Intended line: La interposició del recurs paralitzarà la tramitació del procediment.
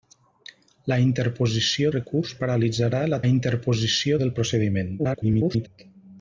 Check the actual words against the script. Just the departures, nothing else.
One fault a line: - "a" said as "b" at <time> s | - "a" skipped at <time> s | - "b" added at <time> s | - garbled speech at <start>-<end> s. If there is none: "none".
- "del" skipped at 1.9 s
- "tramitació" said as "interposició" at 3.3 s
- garbled speech at 5.0-5.7 s